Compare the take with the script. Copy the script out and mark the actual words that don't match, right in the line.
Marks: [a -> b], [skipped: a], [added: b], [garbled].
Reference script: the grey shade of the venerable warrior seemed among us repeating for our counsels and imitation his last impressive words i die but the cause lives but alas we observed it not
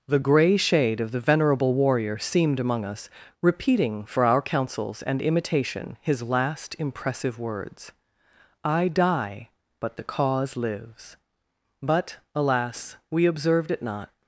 the grey shade of the venerable warrior seemed among us repeating for our counsels and imitation his last impressive words i die but the cause lives but alas we observed it not